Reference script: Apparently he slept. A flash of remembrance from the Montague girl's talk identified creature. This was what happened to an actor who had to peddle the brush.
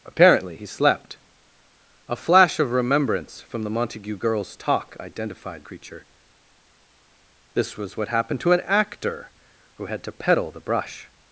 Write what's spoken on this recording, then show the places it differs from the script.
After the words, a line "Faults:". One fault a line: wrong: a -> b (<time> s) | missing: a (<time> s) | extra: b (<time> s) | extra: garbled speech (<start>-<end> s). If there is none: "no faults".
Apparently he slept. A flash of remembrance from the Montague girl's talk identified creature. This was what happened to an actor who had to peddle the brush.
Faults:
no faults